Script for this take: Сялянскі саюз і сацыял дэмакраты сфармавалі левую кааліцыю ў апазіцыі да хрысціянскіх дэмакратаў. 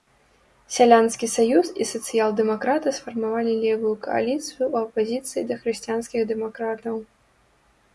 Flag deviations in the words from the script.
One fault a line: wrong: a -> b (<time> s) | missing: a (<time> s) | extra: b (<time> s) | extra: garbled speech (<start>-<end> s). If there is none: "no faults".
no faults